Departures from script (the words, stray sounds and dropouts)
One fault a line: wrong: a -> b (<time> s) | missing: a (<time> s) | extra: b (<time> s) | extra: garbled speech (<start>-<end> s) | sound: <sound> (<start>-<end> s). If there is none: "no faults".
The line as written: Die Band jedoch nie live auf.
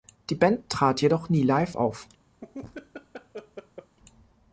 extra: trat (0.7 s)
sound: laugh (2.4-4.0 s)